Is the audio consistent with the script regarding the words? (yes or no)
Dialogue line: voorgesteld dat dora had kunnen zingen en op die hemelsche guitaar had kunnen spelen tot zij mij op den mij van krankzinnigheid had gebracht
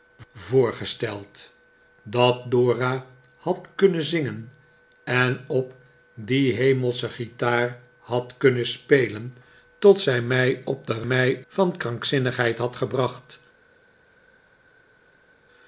yes